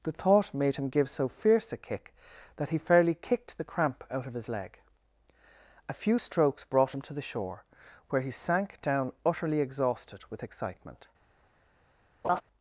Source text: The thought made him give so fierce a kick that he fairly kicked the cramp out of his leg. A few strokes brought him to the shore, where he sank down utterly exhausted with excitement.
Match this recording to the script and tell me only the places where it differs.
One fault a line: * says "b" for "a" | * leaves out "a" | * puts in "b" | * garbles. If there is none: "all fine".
all fine